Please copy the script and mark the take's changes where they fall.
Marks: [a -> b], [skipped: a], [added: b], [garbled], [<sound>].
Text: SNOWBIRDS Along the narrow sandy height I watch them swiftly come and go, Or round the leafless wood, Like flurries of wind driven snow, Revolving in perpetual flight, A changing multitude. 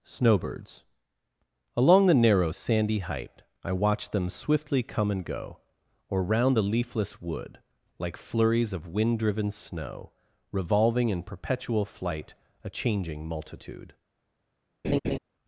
SNOWBIRDS Along the narrow sandy height I watch them swiftly come and go, Or round the leafless wood, Like flurries of wind driven snow, Revolving in perpetual flight, A changing multitude. [laugh]